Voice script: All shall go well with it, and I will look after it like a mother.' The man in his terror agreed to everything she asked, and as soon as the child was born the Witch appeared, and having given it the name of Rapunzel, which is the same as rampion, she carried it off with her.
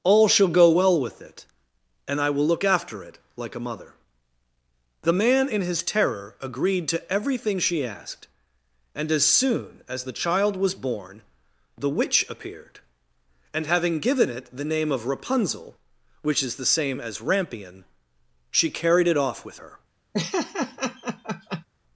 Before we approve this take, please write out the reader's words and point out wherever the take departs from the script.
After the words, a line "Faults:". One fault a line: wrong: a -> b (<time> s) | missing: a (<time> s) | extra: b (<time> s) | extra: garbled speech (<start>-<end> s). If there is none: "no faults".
All shall go well with it, and I will look after it like a mother.' The man in his terror agreed to everything she asked, and as soon as the child was born the Witch appeared, and having given it the name of Rapunzel, which is the same as rampion, she carried it off with her.
Faults:
no faults